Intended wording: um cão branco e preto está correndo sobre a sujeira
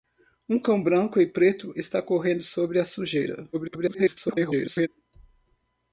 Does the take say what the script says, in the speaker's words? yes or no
no